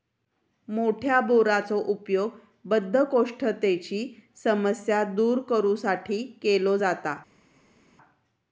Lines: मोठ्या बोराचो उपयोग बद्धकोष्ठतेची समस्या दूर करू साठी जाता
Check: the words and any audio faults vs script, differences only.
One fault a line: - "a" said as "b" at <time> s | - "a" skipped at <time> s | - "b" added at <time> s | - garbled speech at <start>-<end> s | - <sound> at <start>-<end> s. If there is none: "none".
- "केलो" added at 6.4 s